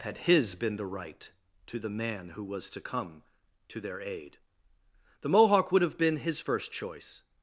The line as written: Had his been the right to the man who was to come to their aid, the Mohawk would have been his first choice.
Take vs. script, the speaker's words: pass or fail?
pass